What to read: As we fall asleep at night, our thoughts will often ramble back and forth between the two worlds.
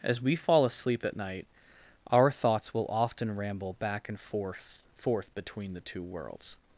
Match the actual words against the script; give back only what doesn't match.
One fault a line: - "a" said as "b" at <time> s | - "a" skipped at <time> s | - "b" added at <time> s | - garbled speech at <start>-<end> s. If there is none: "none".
- "forth" added at 4.9 s